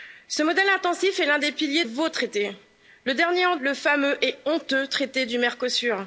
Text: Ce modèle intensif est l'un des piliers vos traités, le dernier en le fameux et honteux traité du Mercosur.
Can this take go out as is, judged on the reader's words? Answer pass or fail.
pass